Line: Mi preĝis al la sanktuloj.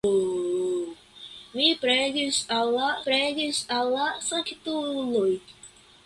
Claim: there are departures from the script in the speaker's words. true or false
true